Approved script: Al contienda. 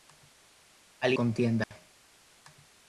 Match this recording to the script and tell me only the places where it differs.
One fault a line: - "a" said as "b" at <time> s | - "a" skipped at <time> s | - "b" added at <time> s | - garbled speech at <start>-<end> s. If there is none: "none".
none